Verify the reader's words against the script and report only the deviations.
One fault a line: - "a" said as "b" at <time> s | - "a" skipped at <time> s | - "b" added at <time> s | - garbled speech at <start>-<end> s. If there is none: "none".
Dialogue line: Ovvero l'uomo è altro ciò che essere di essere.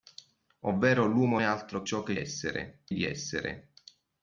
none